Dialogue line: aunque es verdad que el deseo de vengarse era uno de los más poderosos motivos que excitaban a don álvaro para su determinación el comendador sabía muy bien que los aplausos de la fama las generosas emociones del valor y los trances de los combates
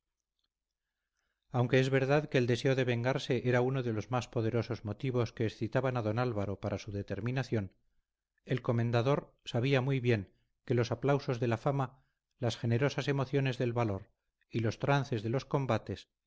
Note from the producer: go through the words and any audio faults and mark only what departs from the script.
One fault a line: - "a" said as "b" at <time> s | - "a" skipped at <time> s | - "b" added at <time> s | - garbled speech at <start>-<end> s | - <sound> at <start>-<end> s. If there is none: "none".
none